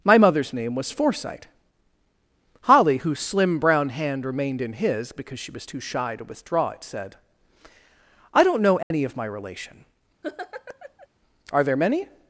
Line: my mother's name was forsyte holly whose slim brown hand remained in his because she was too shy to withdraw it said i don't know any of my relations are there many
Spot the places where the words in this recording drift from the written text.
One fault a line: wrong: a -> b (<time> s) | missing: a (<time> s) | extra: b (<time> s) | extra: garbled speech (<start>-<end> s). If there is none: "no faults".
wrong: relations -> relation (9.2 s)